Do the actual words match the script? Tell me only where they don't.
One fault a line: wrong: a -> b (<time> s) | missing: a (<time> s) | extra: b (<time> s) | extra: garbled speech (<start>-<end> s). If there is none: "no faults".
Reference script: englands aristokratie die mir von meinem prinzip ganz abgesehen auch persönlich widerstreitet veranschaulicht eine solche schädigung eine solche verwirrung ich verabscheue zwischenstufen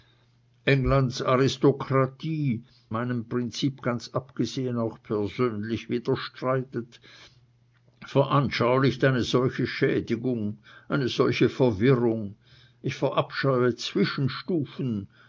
missing: die mir von (2.6 s)